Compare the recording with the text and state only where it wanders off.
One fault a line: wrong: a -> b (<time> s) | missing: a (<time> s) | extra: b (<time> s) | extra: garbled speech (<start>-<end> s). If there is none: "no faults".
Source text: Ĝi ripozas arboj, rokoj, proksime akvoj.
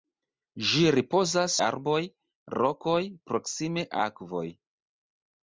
no faults